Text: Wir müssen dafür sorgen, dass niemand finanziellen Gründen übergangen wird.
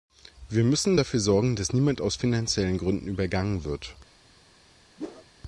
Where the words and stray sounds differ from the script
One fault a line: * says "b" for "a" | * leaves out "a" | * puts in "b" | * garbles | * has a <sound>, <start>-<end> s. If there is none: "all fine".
* puts in "aus"
* has a whoosh, 5.0-5.3 s